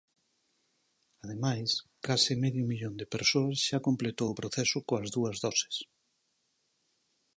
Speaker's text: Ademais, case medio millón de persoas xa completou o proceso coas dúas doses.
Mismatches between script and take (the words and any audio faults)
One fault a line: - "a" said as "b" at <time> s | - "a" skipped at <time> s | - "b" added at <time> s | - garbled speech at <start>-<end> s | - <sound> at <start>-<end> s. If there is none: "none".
none